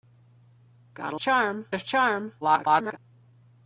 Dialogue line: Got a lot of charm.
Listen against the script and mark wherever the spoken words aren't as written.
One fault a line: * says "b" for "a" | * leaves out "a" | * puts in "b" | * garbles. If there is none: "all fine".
* says "charm" for "lot"
* garbles